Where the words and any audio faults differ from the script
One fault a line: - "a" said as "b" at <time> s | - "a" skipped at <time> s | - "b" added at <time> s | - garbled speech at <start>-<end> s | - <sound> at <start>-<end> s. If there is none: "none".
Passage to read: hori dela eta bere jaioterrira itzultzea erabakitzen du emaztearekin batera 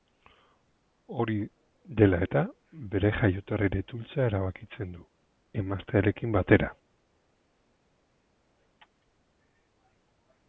none